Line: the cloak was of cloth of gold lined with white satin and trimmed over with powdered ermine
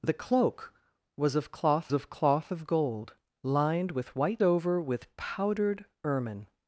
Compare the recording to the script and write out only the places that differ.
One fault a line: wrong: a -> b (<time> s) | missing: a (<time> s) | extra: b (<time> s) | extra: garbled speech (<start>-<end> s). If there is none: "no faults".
extra: cloth of (2.1 s)
missing: satin and trimmed (4.4 s)